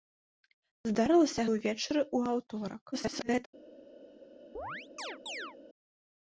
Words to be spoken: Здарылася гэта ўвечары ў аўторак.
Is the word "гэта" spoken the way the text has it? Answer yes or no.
no